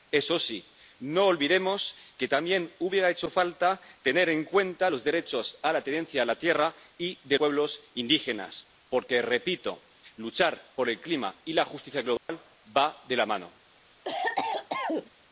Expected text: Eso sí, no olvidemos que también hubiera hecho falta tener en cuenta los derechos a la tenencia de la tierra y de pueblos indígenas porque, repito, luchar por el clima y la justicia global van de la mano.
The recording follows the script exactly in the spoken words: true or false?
true